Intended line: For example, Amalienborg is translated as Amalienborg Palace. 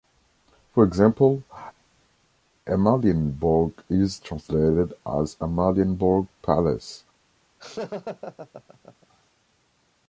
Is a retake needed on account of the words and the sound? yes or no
yes